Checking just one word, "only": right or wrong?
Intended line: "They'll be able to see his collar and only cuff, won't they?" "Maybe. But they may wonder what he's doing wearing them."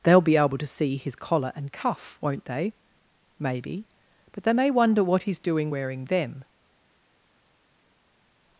wrong